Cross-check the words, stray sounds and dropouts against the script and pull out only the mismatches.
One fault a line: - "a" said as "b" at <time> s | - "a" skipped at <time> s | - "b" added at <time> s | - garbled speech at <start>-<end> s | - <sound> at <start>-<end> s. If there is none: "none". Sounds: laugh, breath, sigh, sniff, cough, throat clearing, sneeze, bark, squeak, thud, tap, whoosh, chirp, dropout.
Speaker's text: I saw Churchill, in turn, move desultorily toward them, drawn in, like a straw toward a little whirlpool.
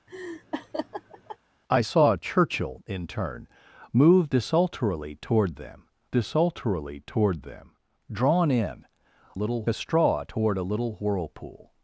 - laugh at 0.1-1.4 s
- "desultorily toward them" added at 6.1 s
- "like" said as "little" at 9.3 s